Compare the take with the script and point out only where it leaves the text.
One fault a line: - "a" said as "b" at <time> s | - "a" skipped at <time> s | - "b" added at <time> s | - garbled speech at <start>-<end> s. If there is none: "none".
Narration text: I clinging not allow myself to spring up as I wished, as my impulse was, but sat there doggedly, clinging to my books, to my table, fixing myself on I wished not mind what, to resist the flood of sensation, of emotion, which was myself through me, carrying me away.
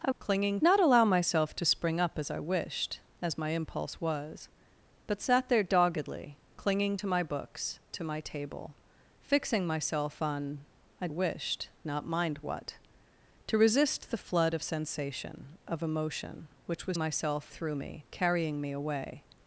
none